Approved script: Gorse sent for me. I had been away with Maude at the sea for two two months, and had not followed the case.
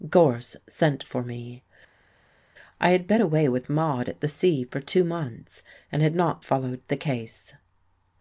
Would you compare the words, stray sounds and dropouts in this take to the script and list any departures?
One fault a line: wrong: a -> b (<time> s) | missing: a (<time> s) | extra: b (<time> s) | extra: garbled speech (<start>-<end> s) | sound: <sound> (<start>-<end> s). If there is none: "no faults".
missing: two (5.0 s)